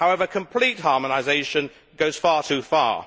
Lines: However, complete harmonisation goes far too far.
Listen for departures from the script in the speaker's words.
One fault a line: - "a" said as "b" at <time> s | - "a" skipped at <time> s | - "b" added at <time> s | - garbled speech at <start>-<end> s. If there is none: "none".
none